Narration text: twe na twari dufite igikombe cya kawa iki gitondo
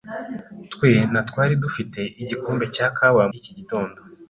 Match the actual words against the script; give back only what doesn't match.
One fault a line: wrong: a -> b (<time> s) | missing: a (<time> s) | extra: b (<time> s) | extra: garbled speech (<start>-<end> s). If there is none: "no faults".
no faults